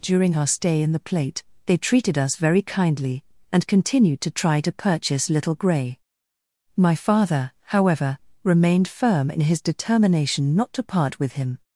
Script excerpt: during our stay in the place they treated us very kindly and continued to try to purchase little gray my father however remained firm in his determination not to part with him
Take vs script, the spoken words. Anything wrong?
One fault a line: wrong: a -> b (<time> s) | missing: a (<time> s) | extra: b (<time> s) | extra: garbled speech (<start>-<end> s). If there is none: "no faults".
wrong: place -> plate (1.0 s)